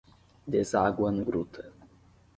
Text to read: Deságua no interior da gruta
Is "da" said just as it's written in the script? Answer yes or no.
no